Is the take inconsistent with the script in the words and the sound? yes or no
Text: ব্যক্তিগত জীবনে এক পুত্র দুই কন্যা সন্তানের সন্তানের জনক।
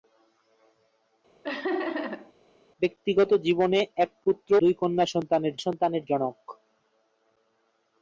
yes